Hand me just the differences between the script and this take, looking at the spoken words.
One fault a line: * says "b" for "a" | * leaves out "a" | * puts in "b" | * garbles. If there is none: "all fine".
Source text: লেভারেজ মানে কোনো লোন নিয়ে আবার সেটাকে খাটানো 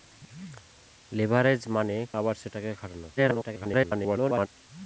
* leaves out "কোনো লোন নিয়ে"
* garbles